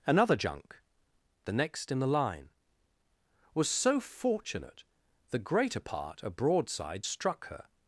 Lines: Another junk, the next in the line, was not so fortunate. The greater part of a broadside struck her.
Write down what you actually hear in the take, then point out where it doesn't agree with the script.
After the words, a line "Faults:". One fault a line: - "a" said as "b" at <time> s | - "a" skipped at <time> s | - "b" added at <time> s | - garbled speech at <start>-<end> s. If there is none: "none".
Another junk, the next in the line, was so fortunate. The greater part a broadside struck her.
Faults:
- "not" skipped at 3.7 s
- "of" skipped at 6.2 s